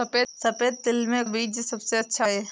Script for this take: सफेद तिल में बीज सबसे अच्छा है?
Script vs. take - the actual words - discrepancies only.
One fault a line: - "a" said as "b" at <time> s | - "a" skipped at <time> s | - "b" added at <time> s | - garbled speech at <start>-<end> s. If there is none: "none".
none